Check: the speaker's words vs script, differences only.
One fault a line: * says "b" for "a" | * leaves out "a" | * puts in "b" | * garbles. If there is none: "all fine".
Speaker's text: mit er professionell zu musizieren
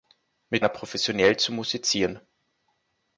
all fine